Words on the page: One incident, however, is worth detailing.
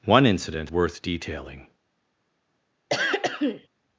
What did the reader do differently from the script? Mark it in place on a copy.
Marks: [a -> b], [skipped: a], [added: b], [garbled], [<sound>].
One incident, [skipped: however, is] worth detailing. [throat clearing]